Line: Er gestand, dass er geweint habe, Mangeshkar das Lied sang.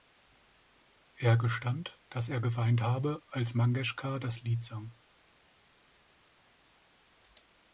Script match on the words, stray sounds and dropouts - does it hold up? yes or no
no